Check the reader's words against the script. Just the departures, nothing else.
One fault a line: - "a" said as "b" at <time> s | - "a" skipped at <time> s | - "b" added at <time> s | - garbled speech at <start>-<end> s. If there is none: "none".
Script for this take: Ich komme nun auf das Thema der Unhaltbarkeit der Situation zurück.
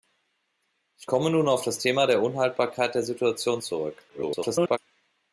- garbled speech at 4.1-4.8 s